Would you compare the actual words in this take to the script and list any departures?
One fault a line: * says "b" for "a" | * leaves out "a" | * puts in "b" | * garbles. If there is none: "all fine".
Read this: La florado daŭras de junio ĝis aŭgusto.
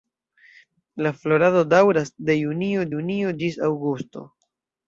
* puts in "junio"